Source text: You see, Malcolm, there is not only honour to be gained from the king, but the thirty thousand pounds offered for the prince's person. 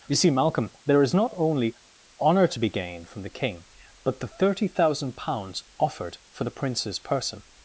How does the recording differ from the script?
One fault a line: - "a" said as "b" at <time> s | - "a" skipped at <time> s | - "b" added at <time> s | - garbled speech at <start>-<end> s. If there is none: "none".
none